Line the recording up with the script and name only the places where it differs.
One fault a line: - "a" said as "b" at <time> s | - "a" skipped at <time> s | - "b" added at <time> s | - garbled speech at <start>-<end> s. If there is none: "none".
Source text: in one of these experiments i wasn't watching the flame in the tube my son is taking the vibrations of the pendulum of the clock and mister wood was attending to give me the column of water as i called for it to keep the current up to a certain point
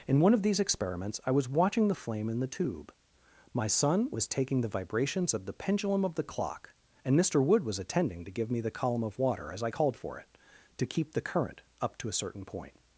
- "wasn't" said as "was" at 1.3 s
- "is" said as "was" at 4.1 s